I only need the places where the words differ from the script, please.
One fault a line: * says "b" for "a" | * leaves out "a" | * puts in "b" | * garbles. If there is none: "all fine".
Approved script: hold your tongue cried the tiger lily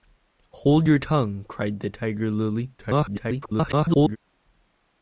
* garbles